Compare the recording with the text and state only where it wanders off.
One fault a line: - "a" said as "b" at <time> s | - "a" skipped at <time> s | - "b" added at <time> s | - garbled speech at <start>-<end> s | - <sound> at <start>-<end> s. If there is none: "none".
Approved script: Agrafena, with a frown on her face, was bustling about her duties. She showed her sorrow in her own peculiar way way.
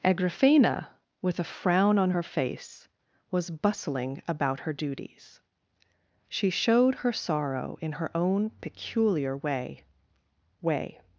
none